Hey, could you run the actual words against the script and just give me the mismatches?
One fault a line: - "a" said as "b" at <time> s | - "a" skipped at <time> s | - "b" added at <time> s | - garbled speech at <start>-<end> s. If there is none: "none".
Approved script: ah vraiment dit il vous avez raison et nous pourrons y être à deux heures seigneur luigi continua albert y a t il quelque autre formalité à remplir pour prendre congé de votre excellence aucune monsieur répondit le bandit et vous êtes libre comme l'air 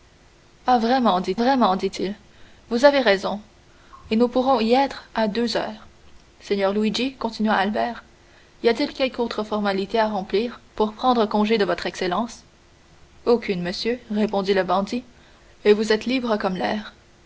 - "vraiment dit" added at 1.4 s